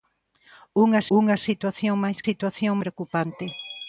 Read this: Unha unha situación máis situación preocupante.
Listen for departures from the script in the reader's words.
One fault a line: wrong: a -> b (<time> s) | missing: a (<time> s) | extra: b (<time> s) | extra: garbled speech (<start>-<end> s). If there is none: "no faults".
no faults